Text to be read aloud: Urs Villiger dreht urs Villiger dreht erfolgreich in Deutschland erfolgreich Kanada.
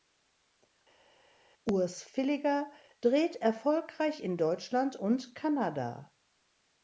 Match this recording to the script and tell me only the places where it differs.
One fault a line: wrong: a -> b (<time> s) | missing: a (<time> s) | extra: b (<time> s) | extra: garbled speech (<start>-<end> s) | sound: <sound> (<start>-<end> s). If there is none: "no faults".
missing: urs Villiger dreht (3.4 s)
wrong: erfolgreich -> und (4.9 s)